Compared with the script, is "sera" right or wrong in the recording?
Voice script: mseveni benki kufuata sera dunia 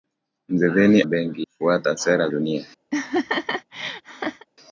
right